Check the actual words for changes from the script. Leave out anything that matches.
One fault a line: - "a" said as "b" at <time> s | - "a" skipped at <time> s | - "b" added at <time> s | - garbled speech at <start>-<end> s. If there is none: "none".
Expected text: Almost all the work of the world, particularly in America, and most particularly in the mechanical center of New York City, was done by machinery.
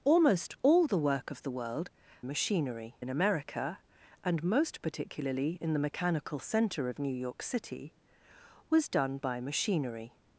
- "particularly" said as "machinery" at 2.2 s